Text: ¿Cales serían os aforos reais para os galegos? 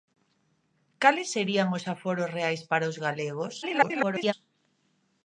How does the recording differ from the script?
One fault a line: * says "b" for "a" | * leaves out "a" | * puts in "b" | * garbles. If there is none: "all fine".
* garbles